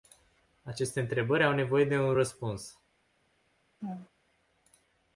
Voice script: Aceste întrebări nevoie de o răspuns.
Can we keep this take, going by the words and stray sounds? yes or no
no